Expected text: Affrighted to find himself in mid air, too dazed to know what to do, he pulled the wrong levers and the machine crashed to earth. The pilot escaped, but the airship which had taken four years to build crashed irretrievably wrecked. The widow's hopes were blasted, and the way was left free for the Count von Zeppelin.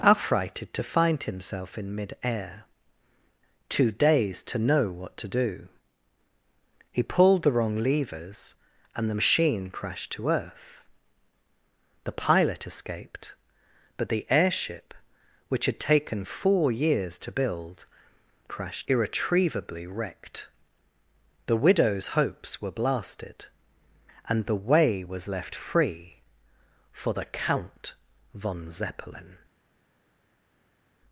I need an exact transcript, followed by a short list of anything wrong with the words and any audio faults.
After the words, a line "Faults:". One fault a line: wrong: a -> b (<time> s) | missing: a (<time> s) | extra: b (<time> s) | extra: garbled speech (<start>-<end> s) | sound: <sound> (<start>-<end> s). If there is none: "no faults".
Affrighted to find himself in mid air, too dazed to know what to do, he pulled the wrong levers and the machine crashed to earth. The pilot escaped, but the airship which had taken four years to build crashed irretrievably wrecked. The widow's hopes were blasted, and the way was left free for the Count von Zeppelin.
Faults:
no faults